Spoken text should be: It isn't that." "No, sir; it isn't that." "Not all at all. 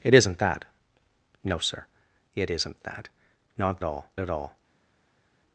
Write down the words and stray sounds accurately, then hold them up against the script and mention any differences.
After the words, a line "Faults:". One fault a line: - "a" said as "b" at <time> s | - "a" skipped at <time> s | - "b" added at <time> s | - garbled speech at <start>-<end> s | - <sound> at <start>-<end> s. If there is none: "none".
It isn't that." "No, sir; it isn't that." "Not all at all.
Faults:
none